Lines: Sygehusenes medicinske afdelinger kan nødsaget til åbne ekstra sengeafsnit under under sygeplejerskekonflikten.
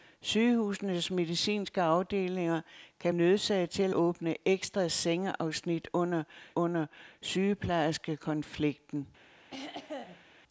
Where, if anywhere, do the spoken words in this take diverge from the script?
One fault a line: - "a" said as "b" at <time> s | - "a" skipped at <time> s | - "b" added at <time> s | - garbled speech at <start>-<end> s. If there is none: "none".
none